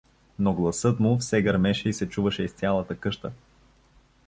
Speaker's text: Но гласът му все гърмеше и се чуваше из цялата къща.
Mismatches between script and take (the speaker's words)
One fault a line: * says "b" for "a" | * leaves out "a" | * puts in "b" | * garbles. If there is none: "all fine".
all fine